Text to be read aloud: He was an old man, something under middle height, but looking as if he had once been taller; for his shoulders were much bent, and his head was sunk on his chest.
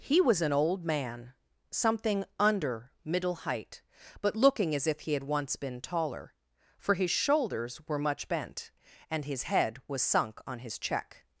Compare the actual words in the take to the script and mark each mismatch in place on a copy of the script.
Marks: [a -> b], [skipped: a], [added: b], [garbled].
He was an old man, something under middle height, but looking as if he had once been taller; for his shoulders were much bent, and his head was sunk on his [chest. -> check]